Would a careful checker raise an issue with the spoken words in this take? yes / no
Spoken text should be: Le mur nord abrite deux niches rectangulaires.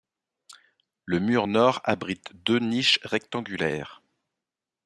no